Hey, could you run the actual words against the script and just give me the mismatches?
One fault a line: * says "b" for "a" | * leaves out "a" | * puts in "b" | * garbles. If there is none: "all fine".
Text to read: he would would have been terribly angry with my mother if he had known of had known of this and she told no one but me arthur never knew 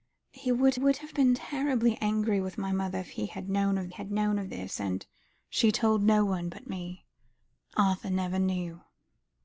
all fine